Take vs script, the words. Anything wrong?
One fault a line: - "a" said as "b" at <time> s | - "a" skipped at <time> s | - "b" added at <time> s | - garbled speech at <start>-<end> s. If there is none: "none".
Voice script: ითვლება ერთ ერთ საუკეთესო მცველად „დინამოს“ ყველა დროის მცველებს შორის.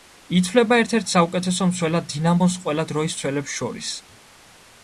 none